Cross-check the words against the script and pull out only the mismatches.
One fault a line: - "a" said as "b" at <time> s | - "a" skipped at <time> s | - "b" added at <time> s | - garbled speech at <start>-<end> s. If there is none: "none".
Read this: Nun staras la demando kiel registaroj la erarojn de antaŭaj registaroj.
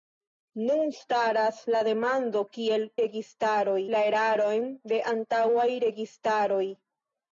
none